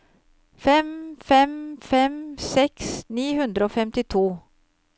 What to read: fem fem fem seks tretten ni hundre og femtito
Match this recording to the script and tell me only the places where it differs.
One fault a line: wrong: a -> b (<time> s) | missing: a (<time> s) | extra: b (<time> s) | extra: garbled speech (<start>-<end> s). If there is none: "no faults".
missing: tretten (2.9 s)